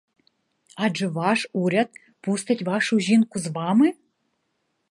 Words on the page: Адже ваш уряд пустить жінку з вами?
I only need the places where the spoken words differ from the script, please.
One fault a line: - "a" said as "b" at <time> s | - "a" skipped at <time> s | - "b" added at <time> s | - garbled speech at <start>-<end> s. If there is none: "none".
- "вашу" added at 2.6 s